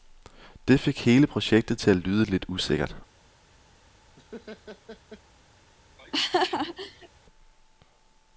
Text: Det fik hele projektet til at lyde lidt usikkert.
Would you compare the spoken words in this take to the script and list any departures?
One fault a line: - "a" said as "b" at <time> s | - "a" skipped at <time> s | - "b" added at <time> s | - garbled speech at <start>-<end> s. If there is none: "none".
none